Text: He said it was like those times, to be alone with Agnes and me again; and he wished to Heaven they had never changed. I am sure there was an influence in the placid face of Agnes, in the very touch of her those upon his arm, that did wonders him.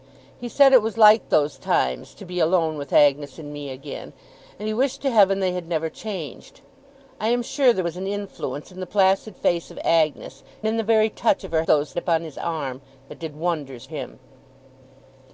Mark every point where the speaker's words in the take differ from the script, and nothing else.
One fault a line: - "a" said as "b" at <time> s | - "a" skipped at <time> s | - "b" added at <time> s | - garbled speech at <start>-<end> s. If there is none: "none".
none